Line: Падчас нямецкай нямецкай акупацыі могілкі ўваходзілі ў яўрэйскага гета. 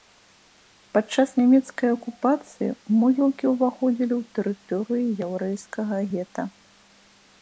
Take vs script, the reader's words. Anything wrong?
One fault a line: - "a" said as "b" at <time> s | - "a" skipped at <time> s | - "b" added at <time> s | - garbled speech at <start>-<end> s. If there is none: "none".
- "нямецкай" skipped at 1.9 s
- "тэрыторыю" added at 4.4 s